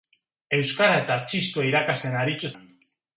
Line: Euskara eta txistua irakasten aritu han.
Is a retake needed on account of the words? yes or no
no